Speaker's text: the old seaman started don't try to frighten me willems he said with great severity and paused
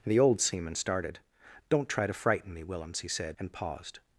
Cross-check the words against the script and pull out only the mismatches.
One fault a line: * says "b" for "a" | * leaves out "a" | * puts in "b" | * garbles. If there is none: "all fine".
* leaves out "with great severity"